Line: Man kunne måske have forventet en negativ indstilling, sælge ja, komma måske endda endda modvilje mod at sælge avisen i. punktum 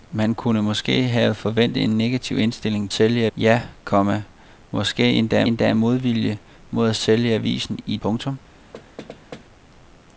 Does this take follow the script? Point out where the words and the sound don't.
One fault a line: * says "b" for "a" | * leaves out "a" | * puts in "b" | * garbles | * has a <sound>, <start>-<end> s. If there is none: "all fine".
* has a thud, 8.7-9.5 s